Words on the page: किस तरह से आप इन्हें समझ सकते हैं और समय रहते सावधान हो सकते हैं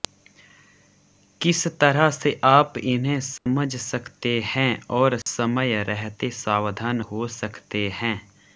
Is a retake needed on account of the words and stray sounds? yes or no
yes